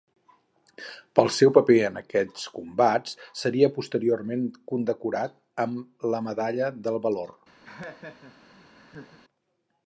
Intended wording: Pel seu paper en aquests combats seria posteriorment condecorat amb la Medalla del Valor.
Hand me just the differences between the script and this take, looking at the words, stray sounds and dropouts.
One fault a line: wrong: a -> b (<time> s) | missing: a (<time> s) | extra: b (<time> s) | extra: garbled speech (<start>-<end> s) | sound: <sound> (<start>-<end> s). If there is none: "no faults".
sound: laugh (7.6-9.2 s)